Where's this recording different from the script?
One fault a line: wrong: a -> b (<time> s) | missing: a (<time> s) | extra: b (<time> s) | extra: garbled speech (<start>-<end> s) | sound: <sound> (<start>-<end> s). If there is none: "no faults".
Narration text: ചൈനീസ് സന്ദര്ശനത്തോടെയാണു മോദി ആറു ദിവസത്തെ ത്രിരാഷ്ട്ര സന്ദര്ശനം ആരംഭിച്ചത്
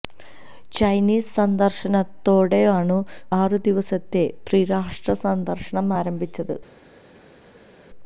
missing: മോദി (3.0 s)